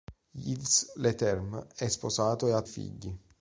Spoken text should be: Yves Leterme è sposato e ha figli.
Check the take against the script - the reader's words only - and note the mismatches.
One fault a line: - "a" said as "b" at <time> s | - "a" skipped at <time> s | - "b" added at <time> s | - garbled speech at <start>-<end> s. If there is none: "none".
none